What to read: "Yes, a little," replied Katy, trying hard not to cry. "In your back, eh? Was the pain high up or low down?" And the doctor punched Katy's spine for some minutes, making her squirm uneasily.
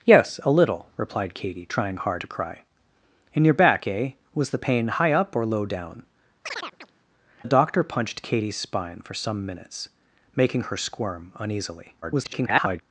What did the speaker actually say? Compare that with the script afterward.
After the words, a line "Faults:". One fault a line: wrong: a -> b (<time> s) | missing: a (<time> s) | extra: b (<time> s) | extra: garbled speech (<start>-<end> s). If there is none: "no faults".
"Yes, a little," replied Katy, trying hard to cry. "In your back, eh? Was the pain high up or low down?" The doctor punched Katy's spine for some minutes, making her squirm uneasily. [garbled]
Faults:
missing: not (2.2 s)
missing: And (6.0 s)
extra: garbled speech (12.0-12.8 s)